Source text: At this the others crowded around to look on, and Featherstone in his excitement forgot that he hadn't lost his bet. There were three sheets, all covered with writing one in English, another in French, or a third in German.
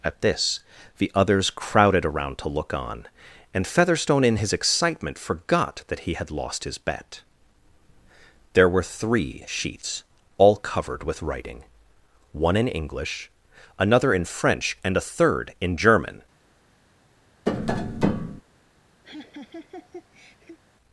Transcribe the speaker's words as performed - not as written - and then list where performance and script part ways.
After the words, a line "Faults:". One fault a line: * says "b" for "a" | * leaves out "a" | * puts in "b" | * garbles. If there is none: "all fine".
At this the others crowded around to look on, and Featherstone in his excitement forgot that he had lost his bet. There were three sheets, all covered with writing one in English, another in French, and a third in German.
Faults:
* says "had" for "hadn't"
* says "and" for "or"